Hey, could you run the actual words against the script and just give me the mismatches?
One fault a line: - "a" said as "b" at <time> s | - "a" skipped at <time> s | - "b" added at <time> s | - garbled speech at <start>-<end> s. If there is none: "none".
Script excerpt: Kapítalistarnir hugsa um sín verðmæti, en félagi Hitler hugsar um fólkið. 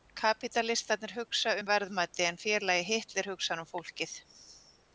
- "sín" skipped at 1.7 s